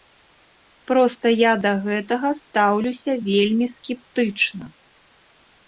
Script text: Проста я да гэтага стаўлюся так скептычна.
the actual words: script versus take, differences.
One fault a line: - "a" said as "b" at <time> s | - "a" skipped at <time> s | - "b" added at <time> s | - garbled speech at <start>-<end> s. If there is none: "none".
- "так" said as "вельмі" at 3.3 s